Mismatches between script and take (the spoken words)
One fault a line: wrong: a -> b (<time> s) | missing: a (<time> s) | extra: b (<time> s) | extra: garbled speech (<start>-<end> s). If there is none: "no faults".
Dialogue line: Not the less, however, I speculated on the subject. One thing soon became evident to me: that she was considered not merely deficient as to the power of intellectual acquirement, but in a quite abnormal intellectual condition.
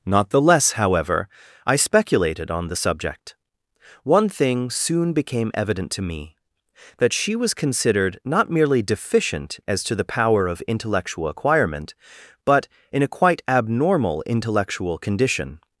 no faults